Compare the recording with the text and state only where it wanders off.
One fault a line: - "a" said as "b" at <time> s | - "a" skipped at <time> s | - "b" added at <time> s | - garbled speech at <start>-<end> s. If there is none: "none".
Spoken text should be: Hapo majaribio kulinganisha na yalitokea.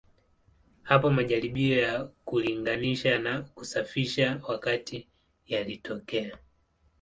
- "ya" added at 1.8 s
- "kusafisha wakati" added at 3.4 s